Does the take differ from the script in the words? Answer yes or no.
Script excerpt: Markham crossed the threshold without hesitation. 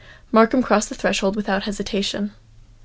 no